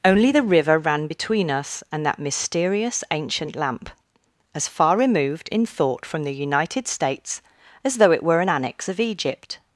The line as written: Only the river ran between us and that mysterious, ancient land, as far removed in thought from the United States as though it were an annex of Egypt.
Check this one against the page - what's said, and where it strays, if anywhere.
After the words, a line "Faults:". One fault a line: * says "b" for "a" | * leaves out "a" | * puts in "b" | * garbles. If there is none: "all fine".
Only the river ran between us and that mysterious, ancient lamp, as far removed in thought from the United States as though it were an annex of Egypt.
Faults:
* says "lamp" for "land"